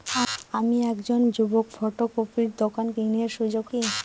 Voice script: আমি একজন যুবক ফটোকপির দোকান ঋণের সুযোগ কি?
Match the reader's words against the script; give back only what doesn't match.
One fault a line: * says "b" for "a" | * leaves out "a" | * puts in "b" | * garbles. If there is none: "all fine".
all fine